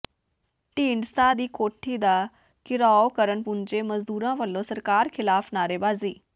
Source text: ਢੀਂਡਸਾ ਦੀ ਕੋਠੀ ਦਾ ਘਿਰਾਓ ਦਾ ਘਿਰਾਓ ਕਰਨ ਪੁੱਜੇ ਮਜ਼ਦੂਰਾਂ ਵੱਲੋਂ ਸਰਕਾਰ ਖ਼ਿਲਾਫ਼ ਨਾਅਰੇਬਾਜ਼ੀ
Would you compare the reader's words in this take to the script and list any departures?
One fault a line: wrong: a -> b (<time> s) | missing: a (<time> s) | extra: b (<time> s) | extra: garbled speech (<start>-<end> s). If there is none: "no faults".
missing: ਦਾ ਘਿਰਾਓ (3.1 s)